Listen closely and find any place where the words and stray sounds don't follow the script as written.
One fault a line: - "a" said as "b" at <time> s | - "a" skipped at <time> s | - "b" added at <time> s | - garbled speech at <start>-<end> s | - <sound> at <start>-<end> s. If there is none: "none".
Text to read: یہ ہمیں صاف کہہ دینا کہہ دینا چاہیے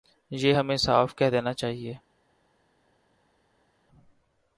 - "کہہ دینا" skipped at 1.5 s